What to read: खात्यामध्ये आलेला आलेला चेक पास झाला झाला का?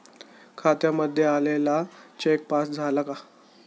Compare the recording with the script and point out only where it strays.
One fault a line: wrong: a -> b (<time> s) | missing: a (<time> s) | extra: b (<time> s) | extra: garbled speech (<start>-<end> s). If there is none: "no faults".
missing: आलेला (1.8 s)
missing: झाला (3.0 s)